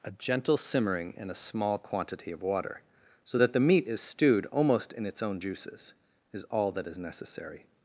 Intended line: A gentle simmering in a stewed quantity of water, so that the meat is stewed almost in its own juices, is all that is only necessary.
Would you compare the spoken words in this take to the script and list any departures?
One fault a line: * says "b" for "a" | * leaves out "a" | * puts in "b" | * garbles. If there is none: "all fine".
* says "small" for "stewed"
* leaves out "only"